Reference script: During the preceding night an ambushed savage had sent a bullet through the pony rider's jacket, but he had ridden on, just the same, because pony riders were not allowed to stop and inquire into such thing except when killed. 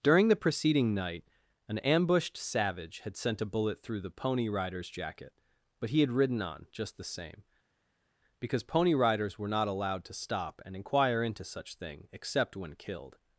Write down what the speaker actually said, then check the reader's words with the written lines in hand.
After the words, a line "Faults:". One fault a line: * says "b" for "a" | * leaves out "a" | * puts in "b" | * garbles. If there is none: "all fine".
During the preceding night an ambushed savage had sent a bullet through the pony rider's jacket, but he had ridden on, just the same, because pony riders were not allowed to stop and inquire into such thing except when killed.
Faults:
all fine